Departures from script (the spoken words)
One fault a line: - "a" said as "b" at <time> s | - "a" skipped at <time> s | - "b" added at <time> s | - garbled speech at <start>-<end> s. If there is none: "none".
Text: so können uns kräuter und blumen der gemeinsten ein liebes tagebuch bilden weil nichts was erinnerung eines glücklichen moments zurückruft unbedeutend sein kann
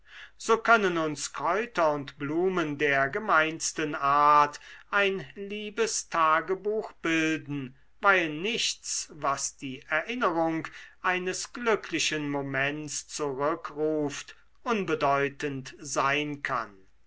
- "art" added at 4.0 s
- "die" added at 9.6 s